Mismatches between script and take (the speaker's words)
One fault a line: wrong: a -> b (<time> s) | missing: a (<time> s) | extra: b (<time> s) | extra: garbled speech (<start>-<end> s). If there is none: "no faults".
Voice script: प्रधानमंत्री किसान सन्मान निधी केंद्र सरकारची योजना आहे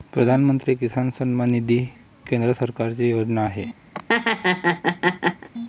no faults